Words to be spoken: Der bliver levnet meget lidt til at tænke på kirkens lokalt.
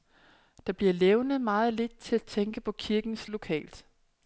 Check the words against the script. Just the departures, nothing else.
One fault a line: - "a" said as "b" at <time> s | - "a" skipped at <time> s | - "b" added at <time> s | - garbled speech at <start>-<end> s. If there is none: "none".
none